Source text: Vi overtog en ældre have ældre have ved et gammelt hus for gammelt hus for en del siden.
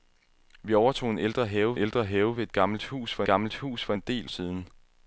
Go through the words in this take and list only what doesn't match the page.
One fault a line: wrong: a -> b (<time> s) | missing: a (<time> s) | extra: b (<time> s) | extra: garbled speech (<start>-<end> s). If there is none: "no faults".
no faults